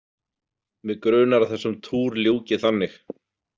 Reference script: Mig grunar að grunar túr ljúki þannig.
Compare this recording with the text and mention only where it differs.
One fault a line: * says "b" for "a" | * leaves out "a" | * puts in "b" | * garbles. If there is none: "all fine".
* says "þessum" for "grunar"